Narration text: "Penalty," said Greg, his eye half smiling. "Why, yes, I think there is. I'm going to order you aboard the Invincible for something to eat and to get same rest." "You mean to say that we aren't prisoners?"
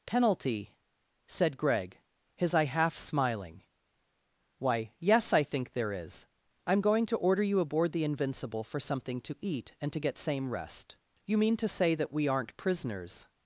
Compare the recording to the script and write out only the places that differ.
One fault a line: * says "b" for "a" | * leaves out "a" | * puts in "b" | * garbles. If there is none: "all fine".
all fine